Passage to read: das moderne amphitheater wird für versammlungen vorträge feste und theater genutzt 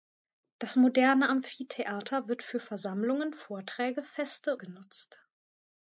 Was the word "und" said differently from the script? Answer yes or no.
yes